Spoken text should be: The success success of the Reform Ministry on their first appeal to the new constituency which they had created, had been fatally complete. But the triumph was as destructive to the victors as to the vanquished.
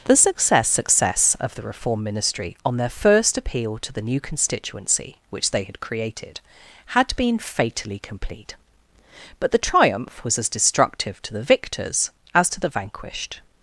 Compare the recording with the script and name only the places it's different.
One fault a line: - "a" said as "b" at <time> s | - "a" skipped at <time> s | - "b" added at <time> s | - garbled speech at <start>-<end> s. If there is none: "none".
none